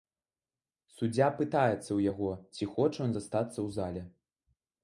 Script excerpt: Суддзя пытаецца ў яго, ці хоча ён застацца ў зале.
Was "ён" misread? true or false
false